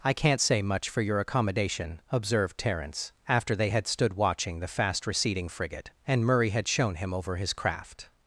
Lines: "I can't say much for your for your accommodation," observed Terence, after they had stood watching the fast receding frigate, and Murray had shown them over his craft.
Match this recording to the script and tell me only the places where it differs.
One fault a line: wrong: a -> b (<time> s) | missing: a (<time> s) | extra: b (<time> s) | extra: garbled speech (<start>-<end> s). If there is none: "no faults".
missing: for your (1.2 s)
wrong: them -> him (7.0 s)